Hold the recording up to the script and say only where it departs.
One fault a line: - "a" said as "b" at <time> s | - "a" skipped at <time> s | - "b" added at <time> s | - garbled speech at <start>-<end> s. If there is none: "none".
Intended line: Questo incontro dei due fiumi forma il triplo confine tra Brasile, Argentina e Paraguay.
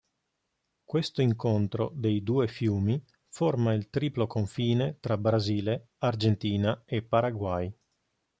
none